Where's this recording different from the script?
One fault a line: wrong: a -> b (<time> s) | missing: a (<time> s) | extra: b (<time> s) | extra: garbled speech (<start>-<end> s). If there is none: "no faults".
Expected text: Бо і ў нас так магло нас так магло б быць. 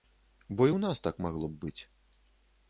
missing: нас так магло (1.5 s)